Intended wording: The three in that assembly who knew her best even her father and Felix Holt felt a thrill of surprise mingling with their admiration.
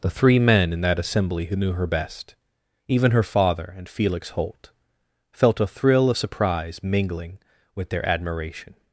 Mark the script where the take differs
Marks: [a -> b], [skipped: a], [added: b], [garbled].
The three [added: men] in that assembly who knew her best even her father and Felix Holt felt a thrill of surprise mingling with their admiration.